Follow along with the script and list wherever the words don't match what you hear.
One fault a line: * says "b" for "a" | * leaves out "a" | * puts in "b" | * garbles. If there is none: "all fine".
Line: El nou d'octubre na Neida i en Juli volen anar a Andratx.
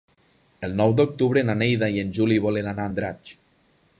all fine